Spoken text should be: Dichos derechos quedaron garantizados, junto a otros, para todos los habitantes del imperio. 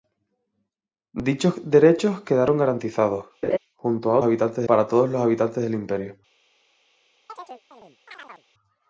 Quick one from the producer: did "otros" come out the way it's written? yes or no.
no